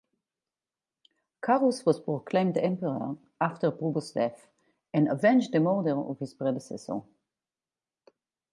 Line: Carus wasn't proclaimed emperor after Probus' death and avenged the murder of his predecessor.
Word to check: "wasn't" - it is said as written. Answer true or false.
false